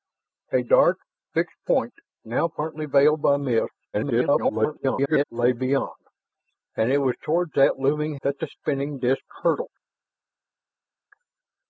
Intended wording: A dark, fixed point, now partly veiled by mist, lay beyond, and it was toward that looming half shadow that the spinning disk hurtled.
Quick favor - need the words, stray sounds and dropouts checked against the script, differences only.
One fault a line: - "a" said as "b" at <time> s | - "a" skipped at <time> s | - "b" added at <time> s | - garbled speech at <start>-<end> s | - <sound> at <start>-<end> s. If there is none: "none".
- garbled speech at 3.9-5.2 s
- "half shadow" skipped at 8.1 s